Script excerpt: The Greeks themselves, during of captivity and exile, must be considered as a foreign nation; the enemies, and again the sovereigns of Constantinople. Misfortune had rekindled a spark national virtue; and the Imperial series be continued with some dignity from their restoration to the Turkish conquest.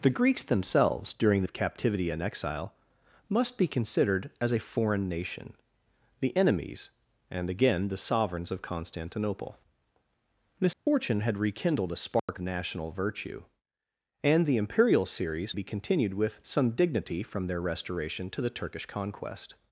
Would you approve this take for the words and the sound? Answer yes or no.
no